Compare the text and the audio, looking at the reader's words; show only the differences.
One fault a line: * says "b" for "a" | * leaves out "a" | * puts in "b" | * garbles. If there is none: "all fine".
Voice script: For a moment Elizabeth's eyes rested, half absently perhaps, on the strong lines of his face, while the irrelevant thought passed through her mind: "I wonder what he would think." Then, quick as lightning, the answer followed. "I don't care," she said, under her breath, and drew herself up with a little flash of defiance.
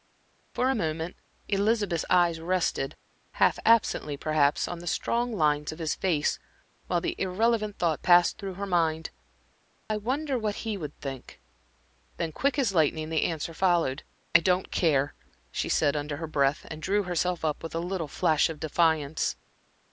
all fine